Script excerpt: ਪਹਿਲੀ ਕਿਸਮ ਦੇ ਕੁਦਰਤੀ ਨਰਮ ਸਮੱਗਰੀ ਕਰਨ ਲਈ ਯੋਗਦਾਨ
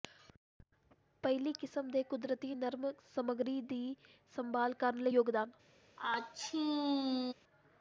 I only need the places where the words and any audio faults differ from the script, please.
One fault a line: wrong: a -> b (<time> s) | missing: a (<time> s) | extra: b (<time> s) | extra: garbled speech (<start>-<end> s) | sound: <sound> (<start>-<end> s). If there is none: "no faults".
extra: ਦੀ ਸੰਭਾਲ (3.6 s)
sound: sneeze (6.0-7.3 s)